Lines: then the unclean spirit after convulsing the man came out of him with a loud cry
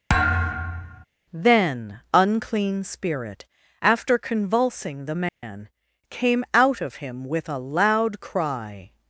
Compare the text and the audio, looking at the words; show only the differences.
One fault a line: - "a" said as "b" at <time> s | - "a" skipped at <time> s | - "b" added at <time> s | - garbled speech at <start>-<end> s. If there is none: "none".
- "the" skipped at 2.0 s